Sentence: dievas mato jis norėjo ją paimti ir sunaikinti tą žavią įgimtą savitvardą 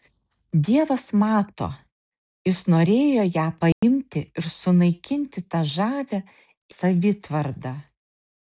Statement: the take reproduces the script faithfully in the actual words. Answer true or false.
false